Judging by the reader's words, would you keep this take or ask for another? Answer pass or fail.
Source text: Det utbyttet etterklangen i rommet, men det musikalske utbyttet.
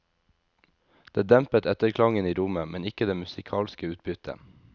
fail